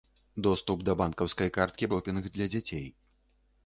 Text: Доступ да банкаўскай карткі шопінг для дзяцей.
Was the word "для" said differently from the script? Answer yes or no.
no